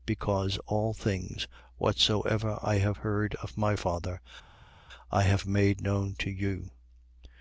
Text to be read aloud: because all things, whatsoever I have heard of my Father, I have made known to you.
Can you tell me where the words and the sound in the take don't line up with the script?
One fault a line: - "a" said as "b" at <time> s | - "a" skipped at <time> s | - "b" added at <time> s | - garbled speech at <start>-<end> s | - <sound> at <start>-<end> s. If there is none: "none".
none